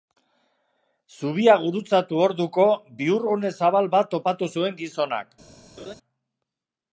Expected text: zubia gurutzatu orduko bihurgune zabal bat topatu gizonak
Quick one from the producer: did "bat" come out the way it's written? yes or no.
yes